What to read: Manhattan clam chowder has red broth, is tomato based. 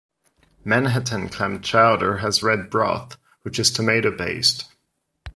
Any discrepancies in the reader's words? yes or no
yes